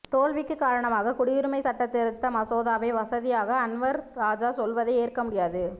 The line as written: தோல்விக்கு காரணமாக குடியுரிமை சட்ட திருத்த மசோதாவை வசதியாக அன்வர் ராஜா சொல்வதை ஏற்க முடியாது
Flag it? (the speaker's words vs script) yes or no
no